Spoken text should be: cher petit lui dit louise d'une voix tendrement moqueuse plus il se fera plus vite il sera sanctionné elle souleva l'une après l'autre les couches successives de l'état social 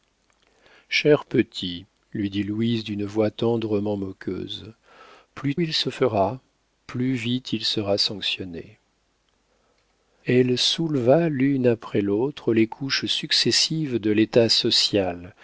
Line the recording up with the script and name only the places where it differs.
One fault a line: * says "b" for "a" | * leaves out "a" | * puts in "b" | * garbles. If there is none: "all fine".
all fine